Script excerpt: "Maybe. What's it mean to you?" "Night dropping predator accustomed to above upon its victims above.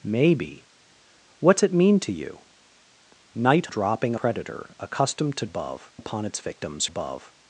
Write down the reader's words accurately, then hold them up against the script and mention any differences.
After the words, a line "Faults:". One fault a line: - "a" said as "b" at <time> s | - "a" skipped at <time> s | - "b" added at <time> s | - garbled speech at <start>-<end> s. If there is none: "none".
"Maybe. What's it mean to you?" "Night dropping predator accustomed to above upon its victims above.
Faults:
none